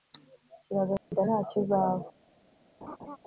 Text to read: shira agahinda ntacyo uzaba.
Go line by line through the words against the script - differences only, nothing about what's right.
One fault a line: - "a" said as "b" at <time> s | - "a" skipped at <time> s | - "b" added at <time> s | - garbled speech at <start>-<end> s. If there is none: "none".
none